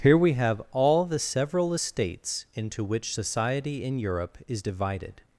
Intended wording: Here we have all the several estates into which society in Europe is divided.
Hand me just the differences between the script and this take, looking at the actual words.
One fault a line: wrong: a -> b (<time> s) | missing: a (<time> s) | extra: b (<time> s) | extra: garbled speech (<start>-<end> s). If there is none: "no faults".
no faults